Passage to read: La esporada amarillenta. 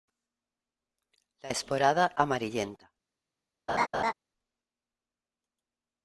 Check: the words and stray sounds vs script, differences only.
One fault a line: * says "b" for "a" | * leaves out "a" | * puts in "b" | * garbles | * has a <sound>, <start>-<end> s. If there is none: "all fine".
* has a laugh, 3.7-4.1 s